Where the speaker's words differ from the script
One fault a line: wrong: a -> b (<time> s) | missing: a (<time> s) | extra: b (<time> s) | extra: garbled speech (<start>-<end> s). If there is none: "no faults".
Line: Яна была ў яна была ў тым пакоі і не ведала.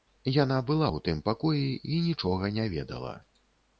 missing: яна была ў (1.0 s)
extra: нічога (2.1 s)